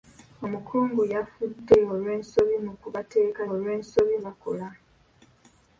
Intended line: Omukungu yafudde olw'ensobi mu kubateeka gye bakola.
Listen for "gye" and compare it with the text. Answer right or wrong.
wrong